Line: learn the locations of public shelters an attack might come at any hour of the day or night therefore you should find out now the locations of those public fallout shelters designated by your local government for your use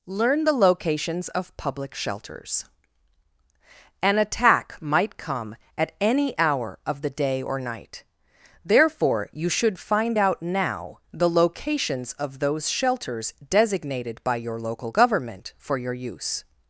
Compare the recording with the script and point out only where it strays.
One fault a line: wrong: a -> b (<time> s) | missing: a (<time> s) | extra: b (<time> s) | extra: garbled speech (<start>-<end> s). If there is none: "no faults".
missing: public fallout (12.7 s)